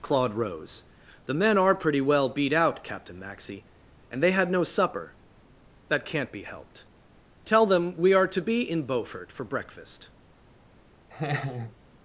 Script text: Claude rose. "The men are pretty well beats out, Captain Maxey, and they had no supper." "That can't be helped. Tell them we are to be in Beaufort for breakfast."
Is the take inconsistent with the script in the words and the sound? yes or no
yes